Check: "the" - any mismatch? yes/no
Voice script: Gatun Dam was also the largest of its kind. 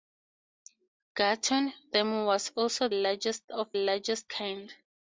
yes